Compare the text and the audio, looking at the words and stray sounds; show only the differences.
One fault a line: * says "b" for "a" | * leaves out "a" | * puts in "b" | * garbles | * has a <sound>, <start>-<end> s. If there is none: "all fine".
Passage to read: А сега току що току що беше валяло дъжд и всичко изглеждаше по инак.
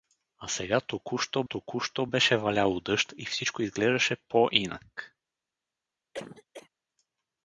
* has a cough, 6.1-6.7 s